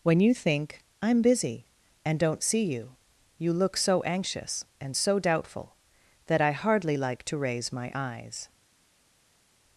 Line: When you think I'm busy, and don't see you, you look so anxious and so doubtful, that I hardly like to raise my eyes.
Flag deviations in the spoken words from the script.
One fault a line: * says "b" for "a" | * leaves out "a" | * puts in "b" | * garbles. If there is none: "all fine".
all fine